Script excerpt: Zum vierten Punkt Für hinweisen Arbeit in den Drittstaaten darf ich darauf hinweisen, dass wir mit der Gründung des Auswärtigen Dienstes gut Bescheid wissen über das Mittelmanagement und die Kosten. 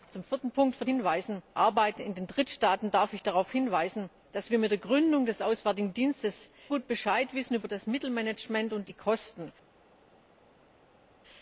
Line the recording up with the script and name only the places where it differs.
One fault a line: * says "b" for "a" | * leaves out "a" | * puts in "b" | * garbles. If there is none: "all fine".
all fine